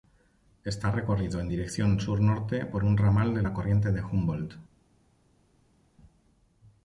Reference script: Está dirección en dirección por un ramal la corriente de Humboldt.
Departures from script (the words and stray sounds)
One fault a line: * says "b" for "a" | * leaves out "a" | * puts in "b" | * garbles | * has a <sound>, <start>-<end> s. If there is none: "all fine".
* says "recorrido" for "dirección"
* puts in "sur norte"
* puts in "de"